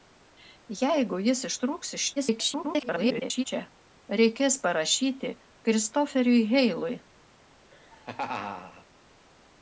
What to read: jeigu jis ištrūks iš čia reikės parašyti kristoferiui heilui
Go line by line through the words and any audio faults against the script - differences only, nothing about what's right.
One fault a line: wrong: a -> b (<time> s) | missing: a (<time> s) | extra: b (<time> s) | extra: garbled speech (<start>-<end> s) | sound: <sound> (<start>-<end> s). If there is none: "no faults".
extra: garbled speech (2.2-3.4 s)
sound: laugh (7.7-8.9 s)